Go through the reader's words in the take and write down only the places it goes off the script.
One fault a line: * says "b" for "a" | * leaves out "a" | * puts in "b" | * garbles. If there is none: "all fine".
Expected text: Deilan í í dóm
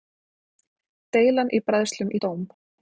* puts in "bræðslum"